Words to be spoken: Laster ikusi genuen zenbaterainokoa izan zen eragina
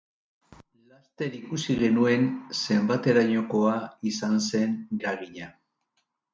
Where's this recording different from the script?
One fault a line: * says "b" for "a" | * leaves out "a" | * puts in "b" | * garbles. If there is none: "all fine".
all fine